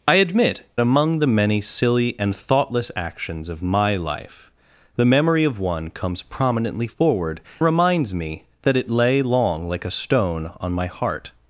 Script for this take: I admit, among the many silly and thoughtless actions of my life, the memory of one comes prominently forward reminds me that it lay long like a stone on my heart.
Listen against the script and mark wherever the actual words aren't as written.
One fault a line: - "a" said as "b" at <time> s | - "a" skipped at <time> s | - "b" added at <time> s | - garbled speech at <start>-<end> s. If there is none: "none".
none